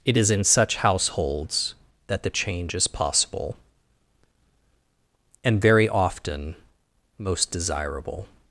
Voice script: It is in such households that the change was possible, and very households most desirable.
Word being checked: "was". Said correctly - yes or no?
no